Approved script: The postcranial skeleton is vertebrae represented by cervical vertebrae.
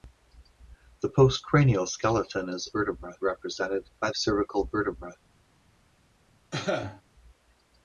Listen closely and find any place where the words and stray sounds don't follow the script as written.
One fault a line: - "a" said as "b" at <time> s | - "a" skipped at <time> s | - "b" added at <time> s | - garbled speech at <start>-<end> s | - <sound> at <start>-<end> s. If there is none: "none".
- cough at 6.5-7.0 s